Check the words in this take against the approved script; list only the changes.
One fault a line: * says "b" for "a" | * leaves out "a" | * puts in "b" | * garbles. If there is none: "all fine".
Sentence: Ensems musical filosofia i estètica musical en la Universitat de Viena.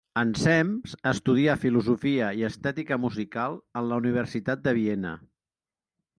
* says "estudià" for "musical"